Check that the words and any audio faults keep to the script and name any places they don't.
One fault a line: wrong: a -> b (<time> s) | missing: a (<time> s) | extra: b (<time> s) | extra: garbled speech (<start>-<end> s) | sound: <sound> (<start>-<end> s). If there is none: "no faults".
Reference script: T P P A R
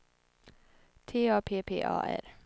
extra: A (1.3 s)